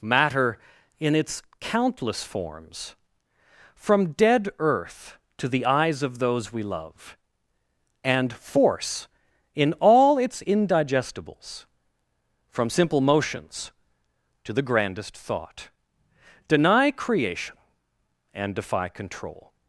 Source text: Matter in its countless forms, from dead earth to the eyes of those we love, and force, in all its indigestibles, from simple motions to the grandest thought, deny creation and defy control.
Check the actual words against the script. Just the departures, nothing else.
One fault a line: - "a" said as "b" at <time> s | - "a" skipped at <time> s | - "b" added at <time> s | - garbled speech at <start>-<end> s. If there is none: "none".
none